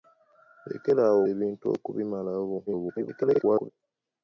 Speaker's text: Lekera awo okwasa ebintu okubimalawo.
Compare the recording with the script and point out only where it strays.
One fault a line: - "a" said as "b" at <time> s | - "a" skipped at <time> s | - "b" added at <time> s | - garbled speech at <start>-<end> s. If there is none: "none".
- "okwasa" skipped at 1.2 s
- garbled speech at 2.7-3.7 s